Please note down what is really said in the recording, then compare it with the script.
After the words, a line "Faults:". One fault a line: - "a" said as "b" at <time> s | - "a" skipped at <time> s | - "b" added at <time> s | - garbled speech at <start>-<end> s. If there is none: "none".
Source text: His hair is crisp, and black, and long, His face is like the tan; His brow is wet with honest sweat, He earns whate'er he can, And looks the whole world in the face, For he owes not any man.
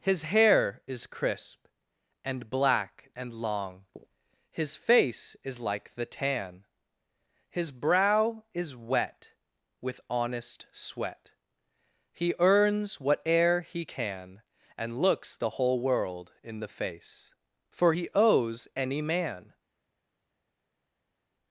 His hair is crisp, and black, and long, His face is like the tan; His brow is wet with honest sweat, He earns whate'er he can, And looks the whole world in the face, For he owes any man.
Faults:
- "not" skipped at 18.7 s